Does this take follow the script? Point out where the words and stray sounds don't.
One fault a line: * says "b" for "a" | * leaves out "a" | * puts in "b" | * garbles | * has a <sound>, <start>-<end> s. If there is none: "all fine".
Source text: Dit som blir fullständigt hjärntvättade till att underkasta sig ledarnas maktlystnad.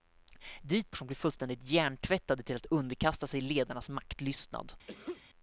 * has a sneeze, 4.9-5.2 s